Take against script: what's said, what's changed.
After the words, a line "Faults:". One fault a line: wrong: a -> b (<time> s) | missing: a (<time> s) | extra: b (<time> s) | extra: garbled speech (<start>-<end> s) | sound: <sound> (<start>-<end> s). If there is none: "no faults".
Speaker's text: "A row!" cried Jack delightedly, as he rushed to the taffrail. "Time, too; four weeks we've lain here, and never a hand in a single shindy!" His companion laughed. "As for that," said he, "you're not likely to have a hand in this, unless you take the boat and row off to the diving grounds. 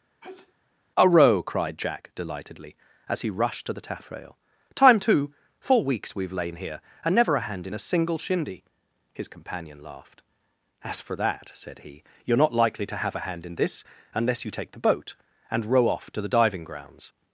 "A row!" cried Jack delightedly, as he rushed to the taffrail. "Time, too; four weeks we've lain here, and never a hand in a single shindy!" His companion laughed. "As for that," said he, "you're not likely to have a hand in this, unless you take the boat and row off to the diving grounds.
Faults:
sound: sneeze (0.2-0.6 s)